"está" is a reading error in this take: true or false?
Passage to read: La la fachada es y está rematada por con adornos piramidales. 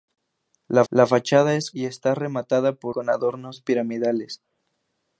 false